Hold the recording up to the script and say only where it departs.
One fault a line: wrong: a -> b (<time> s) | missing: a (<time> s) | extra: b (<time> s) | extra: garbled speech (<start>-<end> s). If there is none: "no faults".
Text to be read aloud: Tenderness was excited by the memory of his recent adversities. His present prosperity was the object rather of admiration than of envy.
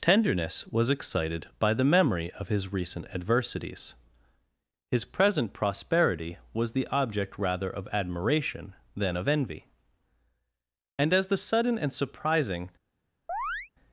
extra: And as the sudden and surprising (11.0 s)